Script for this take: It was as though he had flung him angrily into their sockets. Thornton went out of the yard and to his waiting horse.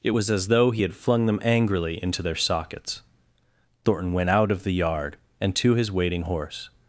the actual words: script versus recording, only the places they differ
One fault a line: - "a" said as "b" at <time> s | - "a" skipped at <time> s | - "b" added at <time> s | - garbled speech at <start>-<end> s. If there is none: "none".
- "him" said as "them" at 1.2 s